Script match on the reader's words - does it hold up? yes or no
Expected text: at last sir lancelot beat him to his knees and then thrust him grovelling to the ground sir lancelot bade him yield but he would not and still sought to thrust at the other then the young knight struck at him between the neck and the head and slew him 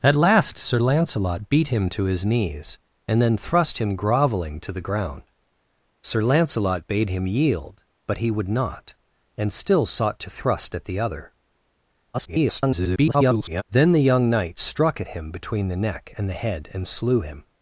no